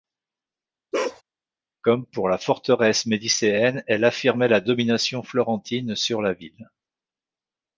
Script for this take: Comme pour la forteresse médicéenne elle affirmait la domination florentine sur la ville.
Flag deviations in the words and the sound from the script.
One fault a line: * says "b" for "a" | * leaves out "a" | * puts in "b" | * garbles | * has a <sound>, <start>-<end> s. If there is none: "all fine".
* has a bark, 0.9-1.2 s